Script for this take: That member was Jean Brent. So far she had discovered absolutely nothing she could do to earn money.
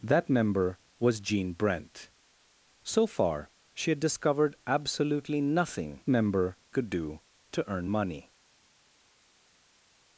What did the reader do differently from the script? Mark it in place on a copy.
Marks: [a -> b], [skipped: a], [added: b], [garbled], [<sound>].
That member was Jean Brent. So far she had discovered absolutely nothing [she -> member] could do to earn money.